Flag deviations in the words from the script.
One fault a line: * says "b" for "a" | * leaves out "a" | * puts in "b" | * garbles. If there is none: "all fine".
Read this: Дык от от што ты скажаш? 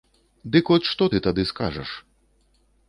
* leaves out "от"
* puts in "тады"